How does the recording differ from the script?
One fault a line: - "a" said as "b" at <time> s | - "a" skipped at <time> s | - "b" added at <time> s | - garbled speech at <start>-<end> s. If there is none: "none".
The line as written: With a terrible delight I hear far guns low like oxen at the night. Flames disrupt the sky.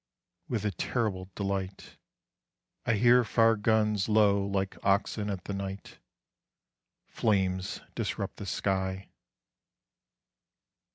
none